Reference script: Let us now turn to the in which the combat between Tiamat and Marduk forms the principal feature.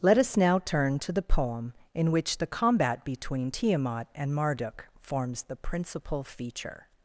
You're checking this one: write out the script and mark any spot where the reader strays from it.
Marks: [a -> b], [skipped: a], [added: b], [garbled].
Let us now turn to the [added: poem] in which the combat between Tiamat and Marduk forms the principal feature.